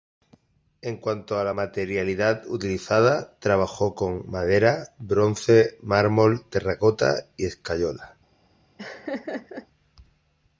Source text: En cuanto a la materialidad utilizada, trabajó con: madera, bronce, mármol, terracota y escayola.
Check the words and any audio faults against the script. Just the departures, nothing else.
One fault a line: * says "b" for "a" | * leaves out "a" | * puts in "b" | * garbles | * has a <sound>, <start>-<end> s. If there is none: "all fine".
* has a laugh, 8.8-9.7 s